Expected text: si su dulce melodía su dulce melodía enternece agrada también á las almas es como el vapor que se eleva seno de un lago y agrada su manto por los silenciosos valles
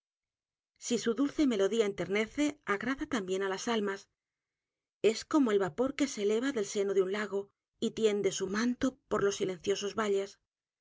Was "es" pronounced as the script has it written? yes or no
yes